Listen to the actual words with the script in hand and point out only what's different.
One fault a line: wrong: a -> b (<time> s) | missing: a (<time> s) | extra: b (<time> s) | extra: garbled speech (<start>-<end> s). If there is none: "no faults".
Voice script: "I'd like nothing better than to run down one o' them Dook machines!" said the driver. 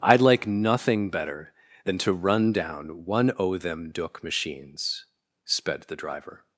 wrong: said -> sped (5.4 s)